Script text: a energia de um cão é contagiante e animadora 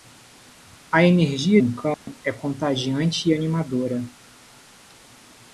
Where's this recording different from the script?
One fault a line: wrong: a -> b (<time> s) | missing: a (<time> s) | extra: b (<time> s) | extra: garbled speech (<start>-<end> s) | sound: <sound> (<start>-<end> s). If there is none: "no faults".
missing: de (1.6 s)
sound: dropout (1.9-2.1 s)